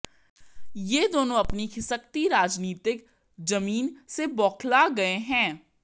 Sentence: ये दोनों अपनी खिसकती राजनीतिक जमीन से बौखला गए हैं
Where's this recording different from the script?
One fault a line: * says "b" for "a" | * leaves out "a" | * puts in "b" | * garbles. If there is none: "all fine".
all fine